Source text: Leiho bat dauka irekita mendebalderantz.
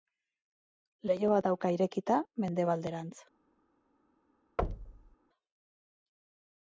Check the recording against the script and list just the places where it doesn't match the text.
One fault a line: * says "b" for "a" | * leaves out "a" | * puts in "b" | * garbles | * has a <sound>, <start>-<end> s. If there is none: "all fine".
* has a thud, 4.6-5.2 s